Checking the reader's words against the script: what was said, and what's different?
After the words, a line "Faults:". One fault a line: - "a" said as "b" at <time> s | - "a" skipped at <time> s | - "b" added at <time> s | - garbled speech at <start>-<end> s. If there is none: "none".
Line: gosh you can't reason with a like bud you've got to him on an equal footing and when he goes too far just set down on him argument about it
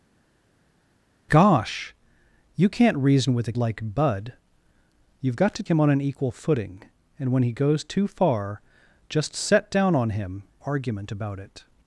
gosh you can't reason with a like bud you've got to him on an equal footing and when he goes too far just set down on him argument about it
Faults:
none